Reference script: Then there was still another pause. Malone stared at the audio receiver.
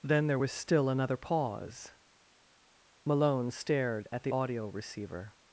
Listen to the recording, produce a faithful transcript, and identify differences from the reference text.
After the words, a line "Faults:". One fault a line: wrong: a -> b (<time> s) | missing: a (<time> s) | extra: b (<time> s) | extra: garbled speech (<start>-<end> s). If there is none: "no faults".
Then there was still another pause. Malone stared at the audio receiver.
Faults:
no faults